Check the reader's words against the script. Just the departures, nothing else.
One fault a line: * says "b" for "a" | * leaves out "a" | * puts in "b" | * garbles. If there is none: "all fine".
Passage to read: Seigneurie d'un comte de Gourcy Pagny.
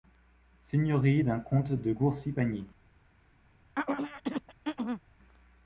all fine